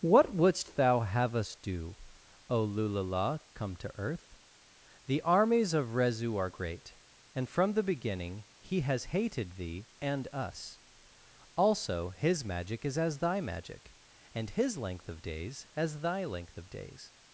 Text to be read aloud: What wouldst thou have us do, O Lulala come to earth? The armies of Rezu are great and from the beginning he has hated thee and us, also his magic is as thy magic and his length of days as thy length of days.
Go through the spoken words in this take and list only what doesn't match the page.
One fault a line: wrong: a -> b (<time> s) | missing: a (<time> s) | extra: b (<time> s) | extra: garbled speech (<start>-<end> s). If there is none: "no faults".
no faults